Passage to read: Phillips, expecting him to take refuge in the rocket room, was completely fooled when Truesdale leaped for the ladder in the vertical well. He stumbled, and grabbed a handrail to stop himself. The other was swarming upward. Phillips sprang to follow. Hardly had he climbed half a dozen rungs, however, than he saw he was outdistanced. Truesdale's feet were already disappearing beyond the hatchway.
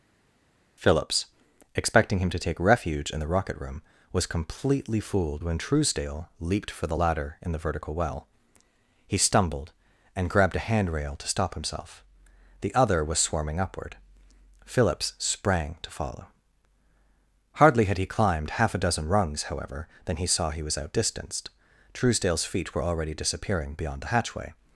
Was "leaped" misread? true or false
false